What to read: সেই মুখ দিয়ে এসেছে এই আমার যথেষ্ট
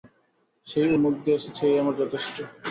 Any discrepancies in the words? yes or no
no